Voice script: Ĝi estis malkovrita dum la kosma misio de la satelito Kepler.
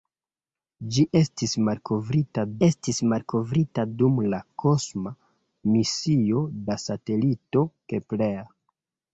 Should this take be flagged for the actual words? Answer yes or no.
yes